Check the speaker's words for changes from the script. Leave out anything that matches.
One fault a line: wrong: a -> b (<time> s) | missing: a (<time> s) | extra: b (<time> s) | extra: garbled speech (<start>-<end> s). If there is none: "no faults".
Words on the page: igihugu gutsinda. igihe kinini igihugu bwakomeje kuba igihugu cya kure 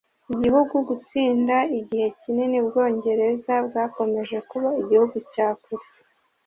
wrong: igihugu -> ubwongereza (2.6 s)